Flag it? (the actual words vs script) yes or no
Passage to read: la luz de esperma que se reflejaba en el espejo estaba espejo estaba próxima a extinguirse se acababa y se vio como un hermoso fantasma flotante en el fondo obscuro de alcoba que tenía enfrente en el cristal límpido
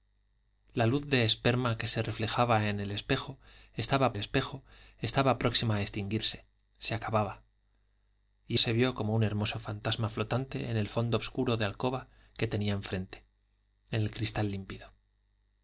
no